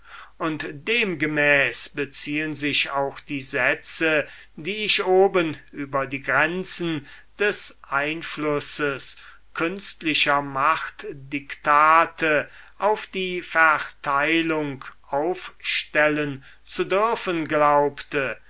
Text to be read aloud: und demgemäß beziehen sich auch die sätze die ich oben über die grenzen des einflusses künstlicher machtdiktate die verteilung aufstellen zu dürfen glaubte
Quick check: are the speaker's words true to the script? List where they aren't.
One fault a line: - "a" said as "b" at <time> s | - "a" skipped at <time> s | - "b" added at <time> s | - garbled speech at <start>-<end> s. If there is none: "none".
- "auf" added at 12.8 s